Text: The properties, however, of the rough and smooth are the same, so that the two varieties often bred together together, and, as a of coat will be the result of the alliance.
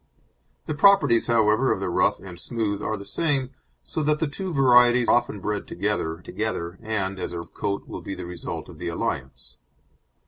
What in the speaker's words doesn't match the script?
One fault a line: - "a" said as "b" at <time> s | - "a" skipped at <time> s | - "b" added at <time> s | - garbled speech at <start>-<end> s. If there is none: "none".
none